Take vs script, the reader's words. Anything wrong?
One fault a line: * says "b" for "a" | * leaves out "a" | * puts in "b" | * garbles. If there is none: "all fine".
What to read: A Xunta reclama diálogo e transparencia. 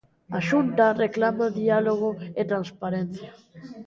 all fine